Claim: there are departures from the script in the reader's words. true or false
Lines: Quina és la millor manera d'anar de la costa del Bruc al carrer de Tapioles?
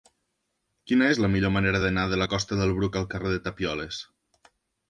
false